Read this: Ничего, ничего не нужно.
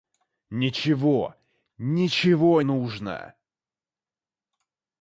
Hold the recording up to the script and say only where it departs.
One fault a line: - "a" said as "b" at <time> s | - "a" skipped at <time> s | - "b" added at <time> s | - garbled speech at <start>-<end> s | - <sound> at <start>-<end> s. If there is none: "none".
- "не" skipped at 2.6 s